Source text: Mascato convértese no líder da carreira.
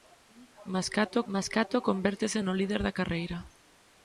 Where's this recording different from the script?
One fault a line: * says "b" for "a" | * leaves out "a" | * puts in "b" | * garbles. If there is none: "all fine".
* puts in "mascato"